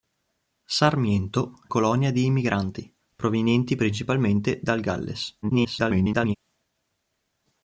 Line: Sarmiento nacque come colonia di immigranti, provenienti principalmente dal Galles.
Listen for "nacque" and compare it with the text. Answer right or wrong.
wrong